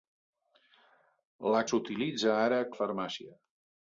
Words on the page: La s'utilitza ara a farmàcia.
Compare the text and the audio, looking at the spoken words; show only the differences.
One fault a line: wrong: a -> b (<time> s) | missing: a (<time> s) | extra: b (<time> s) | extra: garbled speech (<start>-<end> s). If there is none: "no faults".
no faults